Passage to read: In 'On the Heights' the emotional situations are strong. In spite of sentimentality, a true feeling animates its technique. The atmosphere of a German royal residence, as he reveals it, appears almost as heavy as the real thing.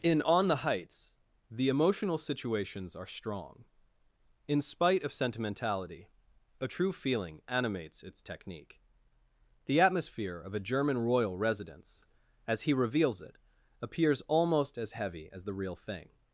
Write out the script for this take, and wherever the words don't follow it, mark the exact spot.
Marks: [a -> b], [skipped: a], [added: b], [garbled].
In 'On the Heights' the emotional situations are strong. In spite of sentimentality, a true feeling animates its technique. The atmosphere of a German royal residence, as he reveals it, appears almost as heavy as the real thing.